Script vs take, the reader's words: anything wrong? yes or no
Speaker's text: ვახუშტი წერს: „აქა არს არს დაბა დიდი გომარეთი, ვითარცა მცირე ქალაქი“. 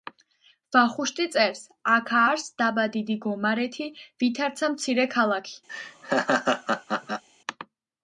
yes